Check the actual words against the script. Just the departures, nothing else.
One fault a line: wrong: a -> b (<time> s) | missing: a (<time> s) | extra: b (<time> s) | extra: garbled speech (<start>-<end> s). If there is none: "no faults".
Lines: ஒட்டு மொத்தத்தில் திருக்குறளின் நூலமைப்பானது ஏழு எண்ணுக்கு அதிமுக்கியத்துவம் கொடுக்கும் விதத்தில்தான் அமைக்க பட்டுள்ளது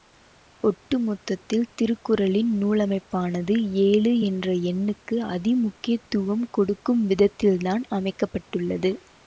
extra: என்ற (4.3 s)